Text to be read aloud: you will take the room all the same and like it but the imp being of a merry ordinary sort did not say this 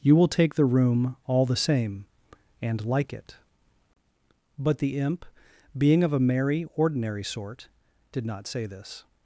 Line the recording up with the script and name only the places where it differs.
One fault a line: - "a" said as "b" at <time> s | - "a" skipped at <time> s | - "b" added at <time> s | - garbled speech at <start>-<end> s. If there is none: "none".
none